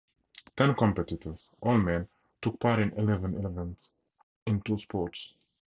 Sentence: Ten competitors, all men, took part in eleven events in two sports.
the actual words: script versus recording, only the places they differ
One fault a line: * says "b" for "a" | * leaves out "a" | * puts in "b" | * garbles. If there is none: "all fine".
all fine